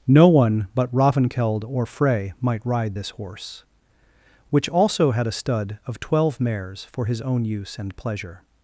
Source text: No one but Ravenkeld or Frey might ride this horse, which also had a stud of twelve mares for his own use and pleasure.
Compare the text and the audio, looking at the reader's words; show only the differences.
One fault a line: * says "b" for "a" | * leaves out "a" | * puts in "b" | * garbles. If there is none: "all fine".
all fine